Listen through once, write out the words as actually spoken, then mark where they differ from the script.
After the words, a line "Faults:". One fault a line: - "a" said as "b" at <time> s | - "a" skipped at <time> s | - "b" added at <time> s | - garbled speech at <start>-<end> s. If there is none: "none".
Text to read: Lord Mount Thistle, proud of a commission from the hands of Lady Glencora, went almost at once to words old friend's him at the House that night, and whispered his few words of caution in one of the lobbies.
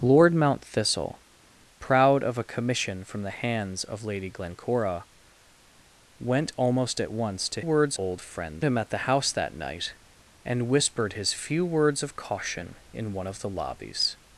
Lord Mount Thistle, proud of a commission from the hands of Lady Glencora, went almost at once to words old friend's him at the House that night, and whispered his few words of caution in one of the lobbies.
Faults:
none